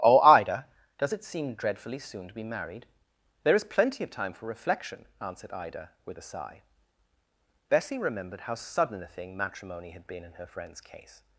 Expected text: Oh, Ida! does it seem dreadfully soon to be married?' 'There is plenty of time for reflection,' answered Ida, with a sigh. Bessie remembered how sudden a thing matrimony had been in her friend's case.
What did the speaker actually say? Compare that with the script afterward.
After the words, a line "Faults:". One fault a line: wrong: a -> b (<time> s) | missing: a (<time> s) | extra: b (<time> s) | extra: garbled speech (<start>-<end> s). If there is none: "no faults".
Oh, Ida! does it seem dreadfully soon to be married?' 'There is plenty of time for reflection,' answered Ida, with a sigh. Bessie remembered how sudden a thing matrimony had been in her friend's case.
Faults:
no faults